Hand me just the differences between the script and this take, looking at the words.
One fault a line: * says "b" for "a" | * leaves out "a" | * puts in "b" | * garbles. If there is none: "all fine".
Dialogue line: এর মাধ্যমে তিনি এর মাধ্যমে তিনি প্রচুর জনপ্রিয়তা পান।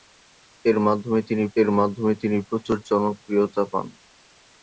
all fine